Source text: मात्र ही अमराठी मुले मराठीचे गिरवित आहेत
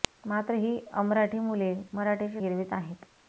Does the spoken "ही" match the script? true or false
true